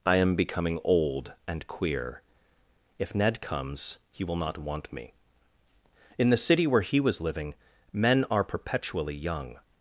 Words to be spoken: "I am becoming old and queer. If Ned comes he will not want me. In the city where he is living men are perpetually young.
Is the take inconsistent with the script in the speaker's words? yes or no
yes